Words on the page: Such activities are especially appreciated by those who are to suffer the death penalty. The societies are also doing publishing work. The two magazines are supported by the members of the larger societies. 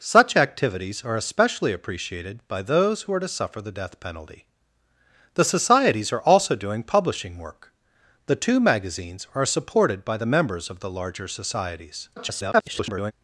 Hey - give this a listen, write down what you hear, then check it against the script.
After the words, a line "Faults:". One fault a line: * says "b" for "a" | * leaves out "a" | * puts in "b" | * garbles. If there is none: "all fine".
Such activities are especially appreciated by those who are to suffer the death penalty. The societies are also doing publishing work. The two magazines are supported by the members of the larger societies. [garbled]
Faults:
* garbles